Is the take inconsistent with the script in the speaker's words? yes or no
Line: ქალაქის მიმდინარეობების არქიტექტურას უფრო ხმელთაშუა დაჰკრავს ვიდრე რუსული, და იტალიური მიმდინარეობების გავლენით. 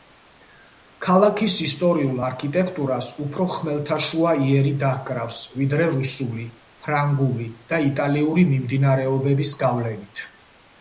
yes